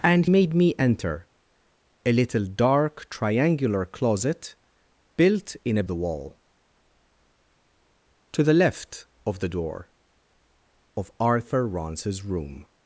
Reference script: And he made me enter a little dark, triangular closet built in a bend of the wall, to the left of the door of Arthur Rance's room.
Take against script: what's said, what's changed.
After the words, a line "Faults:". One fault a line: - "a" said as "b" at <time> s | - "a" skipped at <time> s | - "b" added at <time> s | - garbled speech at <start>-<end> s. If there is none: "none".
And made me enter a little dark, triangular closet built in a the wall, to the left of the door of Arthur Rance's room.
Faults:
- "he" skipped at 0.2 s
- "bend of" skipped at 5.8 s